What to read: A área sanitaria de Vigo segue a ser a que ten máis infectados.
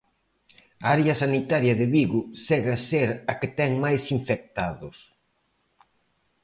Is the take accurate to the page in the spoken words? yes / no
yes